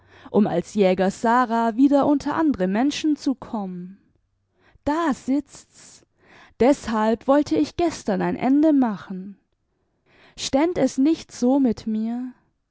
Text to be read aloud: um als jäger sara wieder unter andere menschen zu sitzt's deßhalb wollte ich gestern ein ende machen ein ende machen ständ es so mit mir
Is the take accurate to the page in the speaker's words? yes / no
no